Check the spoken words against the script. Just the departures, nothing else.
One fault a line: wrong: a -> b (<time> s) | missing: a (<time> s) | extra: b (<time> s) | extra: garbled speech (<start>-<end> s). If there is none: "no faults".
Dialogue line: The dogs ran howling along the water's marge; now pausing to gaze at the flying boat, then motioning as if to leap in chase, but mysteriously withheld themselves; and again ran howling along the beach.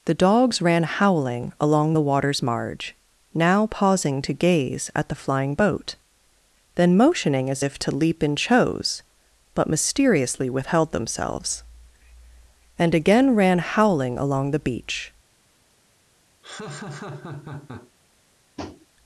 wrong: chase -> chose (8.4 s)